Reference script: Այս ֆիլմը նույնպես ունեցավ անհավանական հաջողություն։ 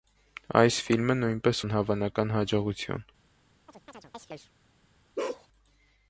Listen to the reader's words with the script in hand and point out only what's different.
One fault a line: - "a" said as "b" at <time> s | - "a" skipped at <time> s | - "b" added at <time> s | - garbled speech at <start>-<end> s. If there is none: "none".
- "ունեցավ" skipped at 1.6 s